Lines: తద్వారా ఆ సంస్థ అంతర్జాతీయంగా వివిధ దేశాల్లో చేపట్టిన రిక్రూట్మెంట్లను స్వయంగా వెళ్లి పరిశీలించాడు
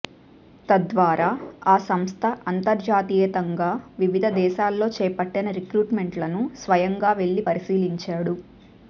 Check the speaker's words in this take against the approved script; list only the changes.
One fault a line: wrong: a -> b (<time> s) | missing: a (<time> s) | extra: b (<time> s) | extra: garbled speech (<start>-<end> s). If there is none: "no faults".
no faults